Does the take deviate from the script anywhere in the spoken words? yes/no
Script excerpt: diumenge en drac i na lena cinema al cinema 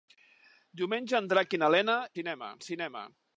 no